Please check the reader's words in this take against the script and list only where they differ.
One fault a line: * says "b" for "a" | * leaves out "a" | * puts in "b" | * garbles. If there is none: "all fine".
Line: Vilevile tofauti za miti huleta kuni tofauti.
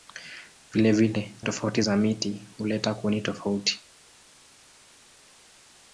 all fine